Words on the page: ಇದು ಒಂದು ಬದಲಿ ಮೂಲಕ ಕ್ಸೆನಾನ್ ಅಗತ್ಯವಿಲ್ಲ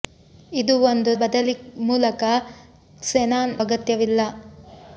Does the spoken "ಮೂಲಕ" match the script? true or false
true